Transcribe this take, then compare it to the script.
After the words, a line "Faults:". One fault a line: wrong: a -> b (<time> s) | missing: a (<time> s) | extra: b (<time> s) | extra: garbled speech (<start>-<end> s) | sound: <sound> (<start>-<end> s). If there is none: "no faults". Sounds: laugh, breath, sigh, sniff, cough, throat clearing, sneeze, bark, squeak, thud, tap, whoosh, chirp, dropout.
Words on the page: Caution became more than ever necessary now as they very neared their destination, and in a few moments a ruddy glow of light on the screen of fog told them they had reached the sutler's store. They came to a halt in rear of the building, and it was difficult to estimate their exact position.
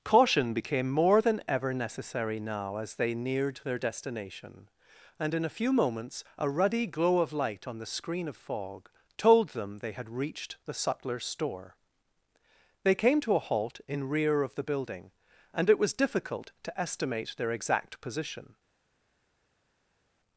Caution became more than ever necessary now as they neared their destination, and in a few moments a ruddy glow of light on the screen of fog told them they had reached the sutler's store. They came to a halt in rear of the building, and it was difficult to estimate their exact position.
Faults:
missing: very (3.1 s)